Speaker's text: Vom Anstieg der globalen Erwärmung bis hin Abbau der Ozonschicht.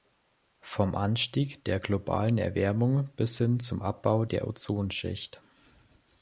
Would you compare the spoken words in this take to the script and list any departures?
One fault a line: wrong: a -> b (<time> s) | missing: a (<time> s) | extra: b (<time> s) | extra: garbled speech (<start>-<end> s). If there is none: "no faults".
extra: zum (3.6 s)